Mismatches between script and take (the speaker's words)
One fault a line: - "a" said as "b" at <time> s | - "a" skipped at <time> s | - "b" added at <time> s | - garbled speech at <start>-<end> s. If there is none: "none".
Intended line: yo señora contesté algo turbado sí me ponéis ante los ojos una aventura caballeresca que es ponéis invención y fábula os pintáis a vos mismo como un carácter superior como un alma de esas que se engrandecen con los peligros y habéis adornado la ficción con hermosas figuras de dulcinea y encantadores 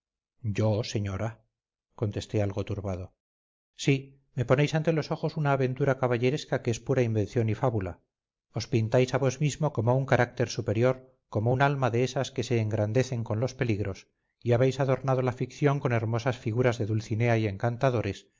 - "ponéis" said as "pura" at 6.8 s